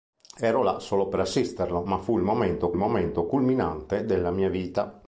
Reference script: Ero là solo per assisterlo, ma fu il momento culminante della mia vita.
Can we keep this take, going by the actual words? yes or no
no